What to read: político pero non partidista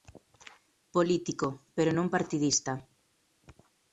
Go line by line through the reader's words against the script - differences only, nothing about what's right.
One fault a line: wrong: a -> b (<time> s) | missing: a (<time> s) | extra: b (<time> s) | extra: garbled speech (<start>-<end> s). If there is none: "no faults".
no faults